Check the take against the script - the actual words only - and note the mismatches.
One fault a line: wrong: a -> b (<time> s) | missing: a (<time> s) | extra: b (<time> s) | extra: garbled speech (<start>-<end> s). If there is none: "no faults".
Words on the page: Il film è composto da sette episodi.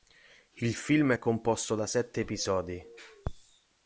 no faults